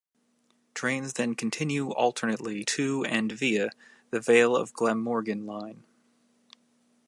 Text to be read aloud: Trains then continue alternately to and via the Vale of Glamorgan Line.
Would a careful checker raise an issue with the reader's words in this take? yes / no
no